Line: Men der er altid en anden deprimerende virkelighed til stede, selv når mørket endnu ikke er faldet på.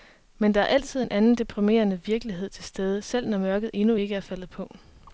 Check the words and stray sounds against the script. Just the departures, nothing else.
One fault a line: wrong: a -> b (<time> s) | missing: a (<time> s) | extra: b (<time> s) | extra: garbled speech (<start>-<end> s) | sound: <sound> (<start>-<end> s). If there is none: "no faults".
no faults